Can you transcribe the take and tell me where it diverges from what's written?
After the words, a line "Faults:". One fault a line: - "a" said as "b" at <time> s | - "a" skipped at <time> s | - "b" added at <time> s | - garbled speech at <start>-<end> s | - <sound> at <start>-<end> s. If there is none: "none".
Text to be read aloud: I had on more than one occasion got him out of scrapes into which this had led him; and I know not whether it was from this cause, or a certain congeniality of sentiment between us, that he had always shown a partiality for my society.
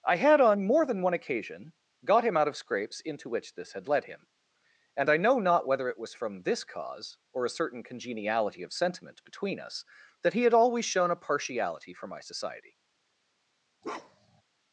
I had on more than one occasion got him out of scrapes into which this had led him; and I know not whether it was from this cause, or a certain congeniality of sentiment between us, that he had always shown a partiality for my society.
Faults:
- bark at 13.8-14.4 s